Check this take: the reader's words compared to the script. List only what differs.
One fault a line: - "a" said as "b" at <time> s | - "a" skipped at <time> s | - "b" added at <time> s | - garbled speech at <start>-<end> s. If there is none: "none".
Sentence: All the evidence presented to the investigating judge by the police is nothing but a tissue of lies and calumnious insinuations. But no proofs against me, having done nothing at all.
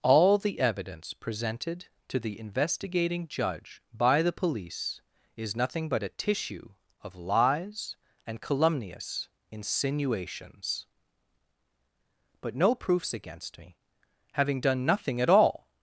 none